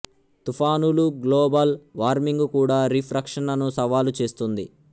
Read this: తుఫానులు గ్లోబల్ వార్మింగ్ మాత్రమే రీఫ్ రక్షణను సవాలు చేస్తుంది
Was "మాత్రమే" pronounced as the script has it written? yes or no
no